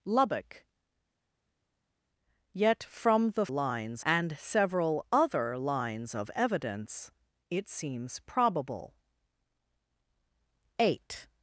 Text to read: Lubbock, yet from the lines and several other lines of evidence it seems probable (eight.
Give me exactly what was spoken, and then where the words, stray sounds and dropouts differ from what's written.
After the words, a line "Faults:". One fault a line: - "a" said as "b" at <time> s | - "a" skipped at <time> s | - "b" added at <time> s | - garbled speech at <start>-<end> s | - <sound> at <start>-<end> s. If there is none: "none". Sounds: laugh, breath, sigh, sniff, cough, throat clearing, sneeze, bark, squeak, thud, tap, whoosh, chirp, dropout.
Lubbock, yet from the lines and several other lines of evidence it seems probable (eight.
Faults:
none